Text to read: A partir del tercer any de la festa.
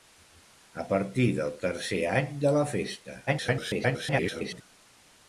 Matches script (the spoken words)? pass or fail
fail